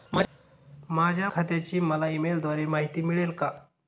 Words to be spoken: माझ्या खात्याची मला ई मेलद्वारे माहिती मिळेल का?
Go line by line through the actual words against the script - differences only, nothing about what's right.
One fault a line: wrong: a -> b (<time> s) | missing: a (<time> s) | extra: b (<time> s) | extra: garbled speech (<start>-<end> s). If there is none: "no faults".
no faults